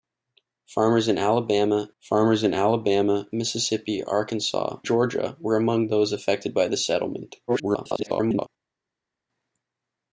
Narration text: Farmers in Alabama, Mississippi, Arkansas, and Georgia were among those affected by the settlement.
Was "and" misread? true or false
true